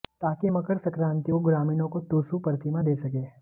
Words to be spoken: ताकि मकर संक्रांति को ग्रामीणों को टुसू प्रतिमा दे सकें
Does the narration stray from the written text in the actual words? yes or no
no